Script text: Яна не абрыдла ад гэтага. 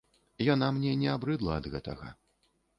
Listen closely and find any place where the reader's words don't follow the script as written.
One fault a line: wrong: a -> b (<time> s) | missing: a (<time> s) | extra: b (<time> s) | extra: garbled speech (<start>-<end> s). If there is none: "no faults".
extra: мне (0.8 s)